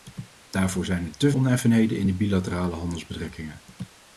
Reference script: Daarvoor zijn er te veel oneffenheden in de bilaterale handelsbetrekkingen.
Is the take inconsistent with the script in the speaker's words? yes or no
yes